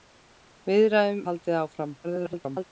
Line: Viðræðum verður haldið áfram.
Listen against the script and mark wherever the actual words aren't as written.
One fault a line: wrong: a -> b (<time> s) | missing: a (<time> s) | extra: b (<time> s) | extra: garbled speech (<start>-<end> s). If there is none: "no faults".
missing: verður (1.2 s)
extra: garbled speech (2.0-2.6 s)